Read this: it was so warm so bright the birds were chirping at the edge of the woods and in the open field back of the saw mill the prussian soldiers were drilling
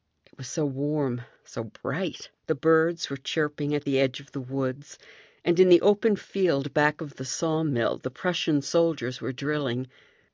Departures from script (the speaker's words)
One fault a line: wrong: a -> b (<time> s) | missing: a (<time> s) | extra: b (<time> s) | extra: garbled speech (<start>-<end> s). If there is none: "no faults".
no faults